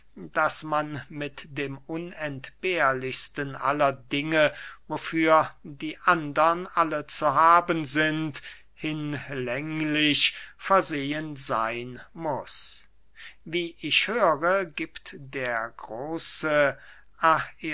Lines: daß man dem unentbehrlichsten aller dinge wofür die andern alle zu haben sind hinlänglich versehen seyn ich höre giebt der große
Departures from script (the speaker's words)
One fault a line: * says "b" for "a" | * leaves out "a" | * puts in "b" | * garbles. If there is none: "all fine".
* puts in "mit"
* puts in "muß wie"